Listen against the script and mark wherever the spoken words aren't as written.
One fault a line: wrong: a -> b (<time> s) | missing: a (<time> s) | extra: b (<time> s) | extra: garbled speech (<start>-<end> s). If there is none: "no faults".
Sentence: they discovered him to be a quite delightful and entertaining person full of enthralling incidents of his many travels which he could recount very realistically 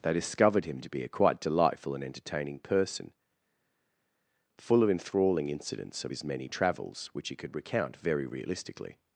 no faults